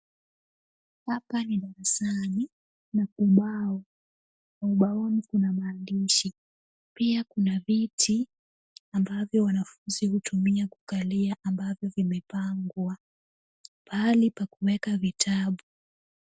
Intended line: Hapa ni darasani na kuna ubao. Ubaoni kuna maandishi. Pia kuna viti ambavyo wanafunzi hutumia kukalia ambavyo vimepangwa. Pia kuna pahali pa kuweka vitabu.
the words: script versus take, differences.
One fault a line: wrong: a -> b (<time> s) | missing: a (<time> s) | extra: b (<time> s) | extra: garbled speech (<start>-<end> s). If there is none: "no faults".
missing: kuna (3.1 s)
missing: Pia kuna (13.0 s)